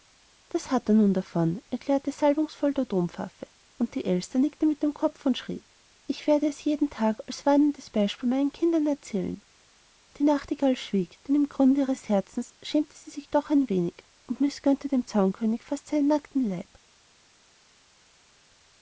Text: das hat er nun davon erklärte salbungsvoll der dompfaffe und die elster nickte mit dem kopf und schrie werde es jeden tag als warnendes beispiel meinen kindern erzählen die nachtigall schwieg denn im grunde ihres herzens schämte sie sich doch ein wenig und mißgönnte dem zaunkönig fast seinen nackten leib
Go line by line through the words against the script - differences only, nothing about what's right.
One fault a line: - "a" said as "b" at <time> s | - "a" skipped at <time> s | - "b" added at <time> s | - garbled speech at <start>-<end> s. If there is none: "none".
- "ich" added at 6.1 s